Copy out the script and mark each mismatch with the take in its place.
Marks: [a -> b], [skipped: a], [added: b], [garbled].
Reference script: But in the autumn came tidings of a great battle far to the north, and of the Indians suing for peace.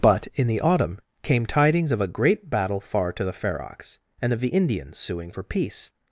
But in the autumn came tidings of a great battle far to the [north, -> ferox] and of the Indians suing for peace.